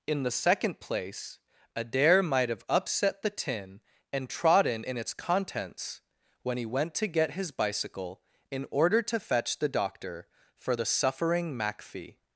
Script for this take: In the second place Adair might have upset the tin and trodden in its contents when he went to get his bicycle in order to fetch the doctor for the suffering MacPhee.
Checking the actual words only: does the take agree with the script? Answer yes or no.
yes